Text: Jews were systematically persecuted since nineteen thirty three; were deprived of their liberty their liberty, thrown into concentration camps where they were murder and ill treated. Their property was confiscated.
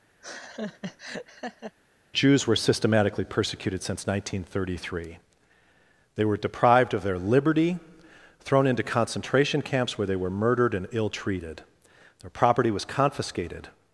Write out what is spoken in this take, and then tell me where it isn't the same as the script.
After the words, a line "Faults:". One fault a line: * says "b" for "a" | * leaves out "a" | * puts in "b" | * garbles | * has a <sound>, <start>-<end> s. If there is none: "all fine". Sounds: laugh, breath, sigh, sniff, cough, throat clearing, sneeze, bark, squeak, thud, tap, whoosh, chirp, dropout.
Jews were systematically persecuted since nineteen thirty three; they were deprived of their liberty, thrown into concentration camps where they were murdered and ill treated. Their property was confiscated.
Faults:
* has a laugh, 0.2-1.8 s
* puts in "they"
* leaves out "their liberty"
* says "murdered" for "murder"